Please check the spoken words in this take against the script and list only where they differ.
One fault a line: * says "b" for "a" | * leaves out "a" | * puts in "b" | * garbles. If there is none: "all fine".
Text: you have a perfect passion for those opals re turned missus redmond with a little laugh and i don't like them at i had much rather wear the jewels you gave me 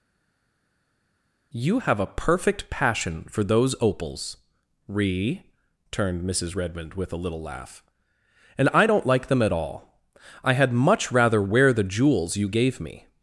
* puts in "all"